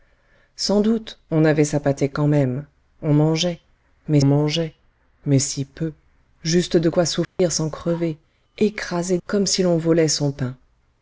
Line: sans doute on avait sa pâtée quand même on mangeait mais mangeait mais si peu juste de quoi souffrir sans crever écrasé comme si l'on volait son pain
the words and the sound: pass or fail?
fail